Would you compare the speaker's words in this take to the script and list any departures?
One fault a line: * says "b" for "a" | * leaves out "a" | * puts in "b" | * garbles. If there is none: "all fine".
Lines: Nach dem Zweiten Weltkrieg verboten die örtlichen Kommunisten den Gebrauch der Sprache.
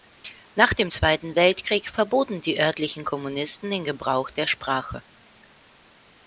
all fine